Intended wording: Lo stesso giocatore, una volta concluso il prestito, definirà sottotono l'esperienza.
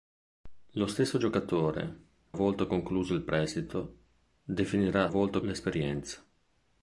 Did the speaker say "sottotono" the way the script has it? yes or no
no